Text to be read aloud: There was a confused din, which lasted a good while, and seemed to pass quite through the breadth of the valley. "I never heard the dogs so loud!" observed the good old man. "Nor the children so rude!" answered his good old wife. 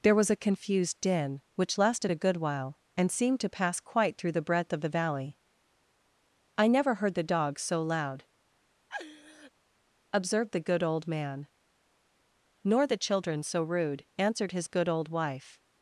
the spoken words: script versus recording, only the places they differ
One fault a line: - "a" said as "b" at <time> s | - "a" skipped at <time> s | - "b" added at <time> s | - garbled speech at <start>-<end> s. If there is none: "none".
none